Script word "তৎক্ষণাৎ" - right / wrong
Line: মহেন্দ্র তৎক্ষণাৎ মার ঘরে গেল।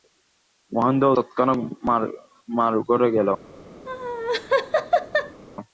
right